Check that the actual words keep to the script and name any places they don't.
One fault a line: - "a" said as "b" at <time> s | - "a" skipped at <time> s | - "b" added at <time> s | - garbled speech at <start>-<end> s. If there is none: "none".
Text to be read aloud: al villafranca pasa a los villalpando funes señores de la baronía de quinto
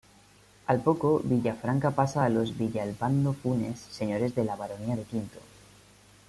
- "poco" added at 0.8 s